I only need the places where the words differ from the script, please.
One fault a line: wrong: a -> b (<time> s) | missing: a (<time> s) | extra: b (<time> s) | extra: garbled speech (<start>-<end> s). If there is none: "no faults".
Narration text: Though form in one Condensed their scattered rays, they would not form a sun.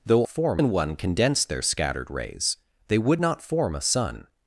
no faults